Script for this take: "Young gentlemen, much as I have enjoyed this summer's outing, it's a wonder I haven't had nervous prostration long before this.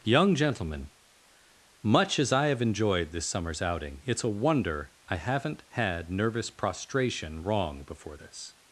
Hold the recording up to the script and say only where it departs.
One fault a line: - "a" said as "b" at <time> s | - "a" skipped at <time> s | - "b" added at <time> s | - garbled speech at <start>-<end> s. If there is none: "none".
- "long" said as "wrong" at 7.4 s